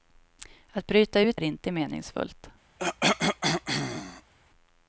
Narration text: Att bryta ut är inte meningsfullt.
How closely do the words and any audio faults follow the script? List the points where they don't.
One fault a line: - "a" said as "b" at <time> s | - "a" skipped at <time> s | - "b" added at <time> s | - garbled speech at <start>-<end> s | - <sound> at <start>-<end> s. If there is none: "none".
- cough at 2.8-4.3 s